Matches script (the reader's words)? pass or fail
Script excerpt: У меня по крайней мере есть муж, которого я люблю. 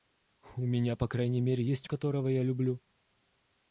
fail